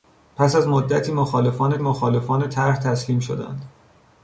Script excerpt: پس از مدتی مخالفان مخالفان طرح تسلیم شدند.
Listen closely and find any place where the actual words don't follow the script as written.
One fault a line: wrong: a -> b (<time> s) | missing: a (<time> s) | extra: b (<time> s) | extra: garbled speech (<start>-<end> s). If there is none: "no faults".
no faults